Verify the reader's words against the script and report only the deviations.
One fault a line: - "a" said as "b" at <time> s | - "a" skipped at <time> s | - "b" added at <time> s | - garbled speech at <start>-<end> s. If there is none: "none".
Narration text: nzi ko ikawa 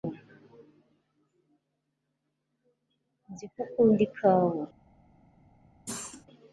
- "ukunda" added at 3.6 s